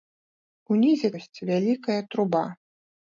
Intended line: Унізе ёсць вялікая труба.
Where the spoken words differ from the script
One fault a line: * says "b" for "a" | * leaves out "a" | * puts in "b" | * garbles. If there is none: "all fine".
all fine